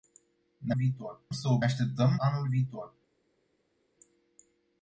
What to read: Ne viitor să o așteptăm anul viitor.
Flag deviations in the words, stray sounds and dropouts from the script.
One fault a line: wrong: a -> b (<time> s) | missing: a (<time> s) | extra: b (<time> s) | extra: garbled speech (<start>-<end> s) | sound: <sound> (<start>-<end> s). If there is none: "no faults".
no faults